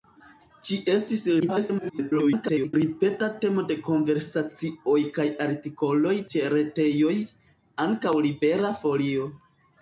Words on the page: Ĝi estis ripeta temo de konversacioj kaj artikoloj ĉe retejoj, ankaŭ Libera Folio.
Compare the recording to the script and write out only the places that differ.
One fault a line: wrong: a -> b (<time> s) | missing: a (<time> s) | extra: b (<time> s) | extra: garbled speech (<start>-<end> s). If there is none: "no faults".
extra: garbled speech (1.4-2.7 s)